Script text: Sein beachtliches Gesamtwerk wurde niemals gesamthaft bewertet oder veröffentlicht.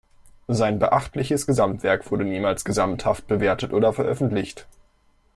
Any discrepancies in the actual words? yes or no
no